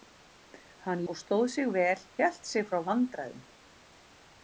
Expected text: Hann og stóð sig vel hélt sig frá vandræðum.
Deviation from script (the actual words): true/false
false